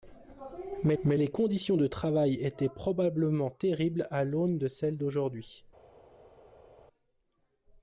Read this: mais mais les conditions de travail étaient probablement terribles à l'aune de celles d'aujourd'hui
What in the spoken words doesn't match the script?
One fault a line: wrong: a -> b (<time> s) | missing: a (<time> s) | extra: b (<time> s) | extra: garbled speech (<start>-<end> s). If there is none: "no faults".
no faults